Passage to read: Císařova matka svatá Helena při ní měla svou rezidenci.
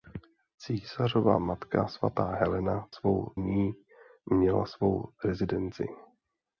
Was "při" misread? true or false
true